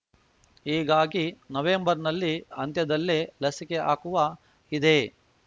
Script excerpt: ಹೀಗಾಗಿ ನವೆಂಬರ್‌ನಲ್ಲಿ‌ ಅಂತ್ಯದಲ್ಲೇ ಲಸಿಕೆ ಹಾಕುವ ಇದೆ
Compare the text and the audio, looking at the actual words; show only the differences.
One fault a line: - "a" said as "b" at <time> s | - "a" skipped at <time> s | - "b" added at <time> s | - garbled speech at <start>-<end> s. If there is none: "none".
none